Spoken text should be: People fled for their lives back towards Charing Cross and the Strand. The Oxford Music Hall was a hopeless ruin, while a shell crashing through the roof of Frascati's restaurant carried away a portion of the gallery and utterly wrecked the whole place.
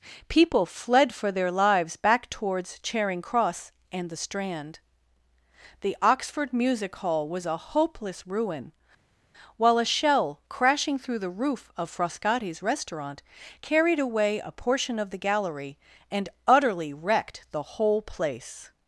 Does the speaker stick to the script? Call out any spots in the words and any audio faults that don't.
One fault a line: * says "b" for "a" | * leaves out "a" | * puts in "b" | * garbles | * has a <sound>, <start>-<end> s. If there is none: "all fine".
all fine